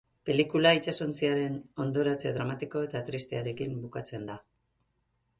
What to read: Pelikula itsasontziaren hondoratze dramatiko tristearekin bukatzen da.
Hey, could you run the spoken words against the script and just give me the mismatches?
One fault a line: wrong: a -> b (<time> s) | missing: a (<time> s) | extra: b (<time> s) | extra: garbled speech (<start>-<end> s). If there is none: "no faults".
extra: eta (2.9 s)